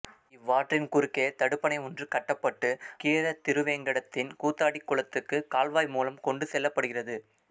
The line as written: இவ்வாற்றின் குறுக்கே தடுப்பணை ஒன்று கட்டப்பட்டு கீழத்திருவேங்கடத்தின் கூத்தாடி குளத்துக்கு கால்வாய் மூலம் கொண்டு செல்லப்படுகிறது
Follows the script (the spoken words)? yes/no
yes